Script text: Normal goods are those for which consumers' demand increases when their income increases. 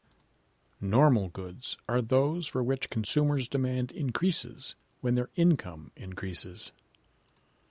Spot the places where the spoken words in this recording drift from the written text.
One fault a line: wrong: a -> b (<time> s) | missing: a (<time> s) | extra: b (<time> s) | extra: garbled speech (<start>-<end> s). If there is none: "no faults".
no faults